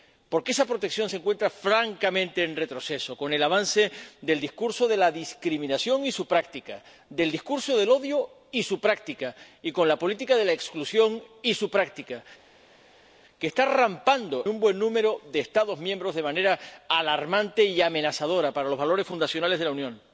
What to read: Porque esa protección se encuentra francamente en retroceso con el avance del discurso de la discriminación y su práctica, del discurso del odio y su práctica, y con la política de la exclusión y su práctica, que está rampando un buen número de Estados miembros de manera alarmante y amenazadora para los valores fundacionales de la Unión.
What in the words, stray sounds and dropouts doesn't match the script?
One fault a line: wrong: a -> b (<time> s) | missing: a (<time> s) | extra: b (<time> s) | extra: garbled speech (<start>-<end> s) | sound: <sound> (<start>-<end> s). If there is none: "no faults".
no faults